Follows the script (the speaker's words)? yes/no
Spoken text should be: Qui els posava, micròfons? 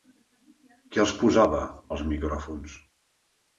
no